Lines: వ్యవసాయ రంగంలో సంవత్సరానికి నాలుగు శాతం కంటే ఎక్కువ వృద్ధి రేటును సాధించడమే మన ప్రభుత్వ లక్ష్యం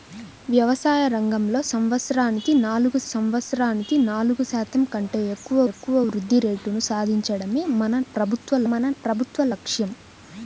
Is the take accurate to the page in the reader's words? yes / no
no